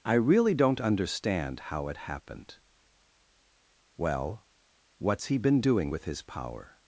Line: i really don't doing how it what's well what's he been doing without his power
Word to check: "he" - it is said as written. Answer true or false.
true